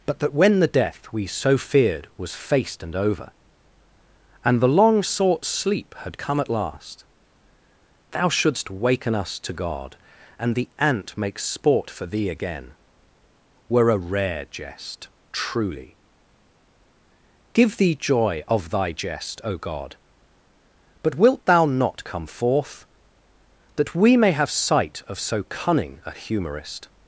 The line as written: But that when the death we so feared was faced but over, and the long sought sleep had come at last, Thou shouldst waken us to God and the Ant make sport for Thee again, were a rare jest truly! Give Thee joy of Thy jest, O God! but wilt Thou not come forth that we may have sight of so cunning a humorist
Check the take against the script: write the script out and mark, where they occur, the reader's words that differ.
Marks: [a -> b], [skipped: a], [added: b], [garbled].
But that when the death we so feared was faced [but -> and] over, and the long sought sleep had come at last, Thou shouldst waken us to God and the Ant make sport for Thee again, were a rare jest truly! Give Thee joy of Thy jest, O God! but wilt Thou not come forth that we may have sight of so cunning a humorist